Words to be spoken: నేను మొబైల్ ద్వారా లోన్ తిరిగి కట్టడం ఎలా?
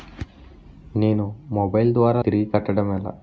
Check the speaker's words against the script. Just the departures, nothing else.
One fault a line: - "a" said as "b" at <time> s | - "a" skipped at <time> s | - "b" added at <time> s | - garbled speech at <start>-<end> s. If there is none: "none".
- "లోన్" skipped at 2.2 s